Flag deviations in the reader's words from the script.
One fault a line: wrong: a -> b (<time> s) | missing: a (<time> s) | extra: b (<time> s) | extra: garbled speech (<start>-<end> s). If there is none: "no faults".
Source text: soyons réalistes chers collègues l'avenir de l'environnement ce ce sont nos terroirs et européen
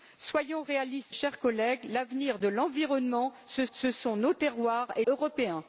no faults